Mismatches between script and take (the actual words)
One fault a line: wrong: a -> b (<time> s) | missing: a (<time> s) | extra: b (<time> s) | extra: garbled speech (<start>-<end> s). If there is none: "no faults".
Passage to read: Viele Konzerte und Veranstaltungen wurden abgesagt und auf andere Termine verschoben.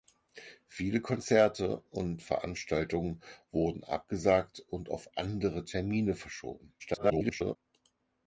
extra: garbled speech (6.8-7.6 s)